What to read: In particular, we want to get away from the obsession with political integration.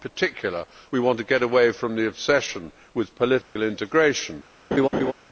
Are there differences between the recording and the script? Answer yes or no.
no